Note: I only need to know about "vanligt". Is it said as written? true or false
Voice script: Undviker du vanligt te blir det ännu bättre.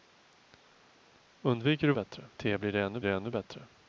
false